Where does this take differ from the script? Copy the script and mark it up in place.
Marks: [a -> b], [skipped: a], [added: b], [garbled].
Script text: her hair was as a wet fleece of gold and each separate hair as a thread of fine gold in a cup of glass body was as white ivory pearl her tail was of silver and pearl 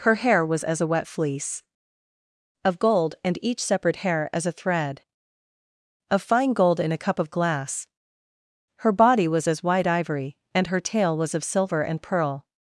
her hair was as a wet fleece of gold and each separate hair as a thread of fine gold in a cup of glass [added: her] body was as white ivory [pearl -> and] her tail was of silver and pearl